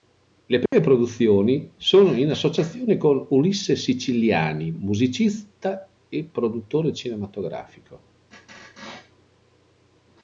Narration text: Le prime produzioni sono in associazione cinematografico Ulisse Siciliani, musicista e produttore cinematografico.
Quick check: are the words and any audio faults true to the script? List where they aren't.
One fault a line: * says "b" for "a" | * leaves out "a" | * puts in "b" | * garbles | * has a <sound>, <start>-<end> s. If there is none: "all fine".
* has a dropout, 0.7-0.7 s
* says "con" for "cinematografico"